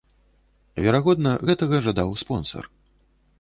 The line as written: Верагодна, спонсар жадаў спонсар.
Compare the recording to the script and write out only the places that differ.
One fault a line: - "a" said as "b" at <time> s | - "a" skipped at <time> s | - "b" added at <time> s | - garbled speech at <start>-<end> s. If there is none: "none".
- "спонсар" said as "гэтага" at 1.5 s